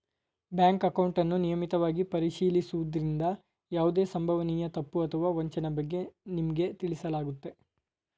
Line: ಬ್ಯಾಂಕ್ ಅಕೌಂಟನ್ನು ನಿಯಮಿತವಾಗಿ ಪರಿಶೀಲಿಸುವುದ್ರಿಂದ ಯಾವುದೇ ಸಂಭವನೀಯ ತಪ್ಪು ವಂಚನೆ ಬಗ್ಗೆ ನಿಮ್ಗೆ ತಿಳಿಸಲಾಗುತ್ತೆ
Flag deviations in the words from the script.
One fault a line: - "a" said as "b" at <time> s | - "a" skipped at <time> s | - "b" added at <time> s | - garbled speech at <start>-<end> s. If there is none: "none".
- "ಅಥವಾ" added at 5.0 s